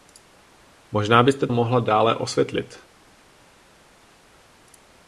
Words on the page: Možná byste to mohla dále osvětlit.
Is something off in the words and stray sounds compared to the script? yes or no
yes